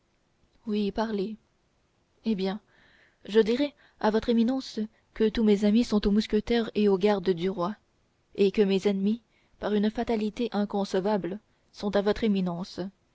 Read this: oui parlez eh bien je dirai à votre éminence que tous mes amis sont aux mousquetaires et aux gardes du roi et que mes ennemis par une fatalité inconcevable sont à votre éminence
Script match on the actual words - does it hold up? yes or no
yes